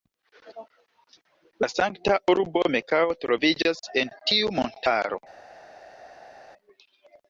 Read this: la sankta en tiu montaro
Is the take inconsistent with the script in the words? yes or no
yes